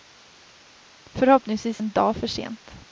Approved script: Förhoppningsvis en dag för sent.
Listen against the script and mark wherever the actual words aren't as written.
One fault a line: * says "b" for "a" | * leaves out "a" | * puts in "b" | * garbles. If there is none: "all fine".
all fine